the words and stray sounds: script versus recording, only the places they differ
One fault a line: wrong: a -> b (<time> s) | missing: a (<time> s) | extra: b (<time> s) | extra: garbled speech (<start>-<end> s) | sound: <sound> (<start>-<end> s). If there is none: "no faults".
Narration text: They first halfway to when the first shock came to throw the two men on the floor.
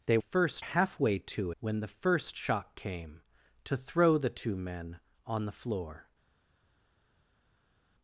no faults